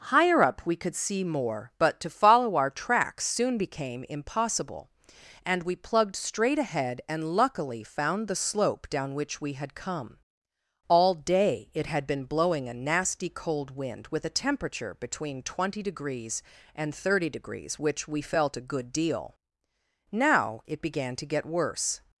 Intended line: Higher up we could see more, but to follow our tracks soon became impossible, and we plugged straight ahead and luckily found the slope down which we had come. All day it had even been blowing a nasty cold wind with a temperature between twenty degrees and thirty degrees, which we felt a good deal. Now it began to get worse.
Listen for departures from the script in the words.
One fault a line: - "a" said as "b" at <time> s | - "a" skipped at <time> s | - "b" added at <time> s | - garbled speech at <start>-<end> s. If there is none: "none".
- "even" skipped at 12.1 s